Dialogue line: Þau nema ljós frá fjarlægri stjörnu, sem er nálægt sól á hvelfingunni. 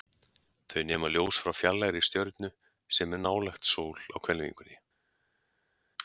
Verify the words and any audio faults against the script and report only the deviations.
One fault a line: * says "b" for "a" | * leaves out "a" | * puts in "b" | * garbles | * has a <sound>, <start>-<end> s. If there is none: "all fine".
all fine